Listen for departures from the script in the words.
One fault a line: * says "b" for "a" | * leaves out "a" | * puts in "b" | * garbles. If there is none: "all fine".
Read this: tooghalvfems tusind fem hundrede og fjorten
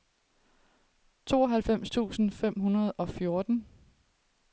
all fine